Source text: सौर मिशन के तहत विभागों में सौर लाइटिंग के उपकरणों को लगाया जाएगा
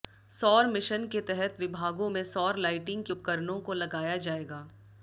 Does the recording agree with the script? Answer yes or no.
yes